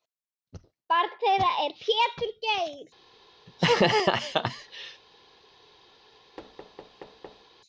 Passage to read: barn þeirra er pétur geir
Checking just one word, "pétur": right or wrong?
right